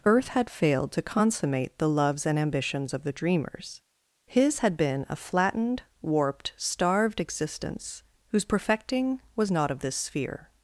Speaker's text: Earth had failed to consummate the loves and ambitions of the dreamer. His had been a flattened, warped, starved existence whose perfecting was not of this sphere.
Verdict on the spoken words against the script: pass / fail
fail